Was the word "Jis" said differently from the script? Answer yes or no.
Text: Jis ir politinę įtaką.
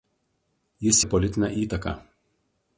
no